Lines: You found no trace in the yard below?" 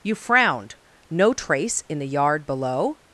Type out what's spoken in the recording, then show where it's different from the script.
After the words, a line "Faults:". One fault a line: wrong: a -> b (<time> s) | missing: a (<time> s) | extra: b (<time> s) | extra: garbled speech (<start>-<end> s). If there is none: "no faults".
You frowned no trace in the yard below?"
Faults:
wrong: found -> frowned (0.1 s)